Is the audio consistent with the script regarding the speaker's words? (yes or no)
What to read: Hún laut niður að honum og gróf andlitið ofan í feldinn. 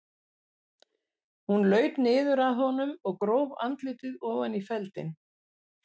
yes